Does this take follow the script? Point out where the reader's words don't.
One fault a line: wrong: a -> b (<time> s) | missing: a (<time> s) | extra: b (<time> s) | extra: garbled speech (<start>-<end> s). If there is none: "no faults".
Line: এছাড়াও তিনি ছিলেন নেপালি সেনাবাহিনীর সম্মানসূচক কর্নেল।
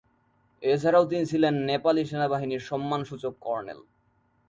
no faults